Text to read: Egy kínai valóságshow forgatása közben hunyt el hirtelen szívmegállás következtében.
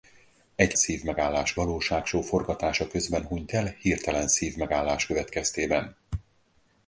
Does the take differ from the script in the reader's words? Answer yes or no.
yes